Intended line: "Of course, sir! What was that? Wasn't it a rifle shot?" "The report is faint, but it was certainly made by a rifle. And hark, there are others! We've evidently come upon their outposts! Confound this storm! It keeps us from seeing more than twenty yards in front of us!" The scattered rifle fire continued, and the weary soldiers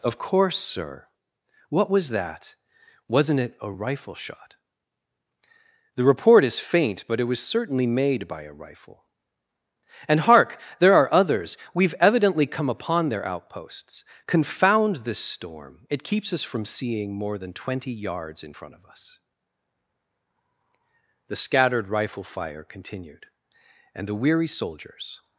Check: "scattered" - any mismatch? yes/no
no